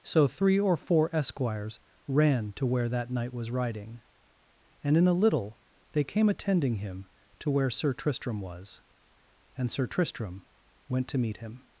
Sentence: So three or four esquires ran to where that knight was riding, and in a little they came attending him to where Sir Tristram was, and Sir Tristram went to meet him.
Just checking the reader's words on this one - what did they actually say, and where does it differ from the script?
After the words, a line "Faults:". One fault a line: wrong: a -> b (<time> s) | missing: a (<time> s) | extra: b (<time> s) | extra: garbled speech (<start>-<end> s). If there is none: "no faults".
So three or four esquires ran to where that knight was riding, and in a little they came attending him to where Sir Tristram was, and Sir Tristram went to meet him.
Faults:
no faults